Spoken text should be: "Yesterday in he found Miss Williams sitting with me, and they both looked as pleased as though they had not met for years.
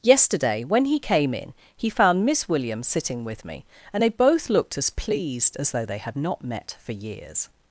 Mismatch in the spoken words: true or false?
true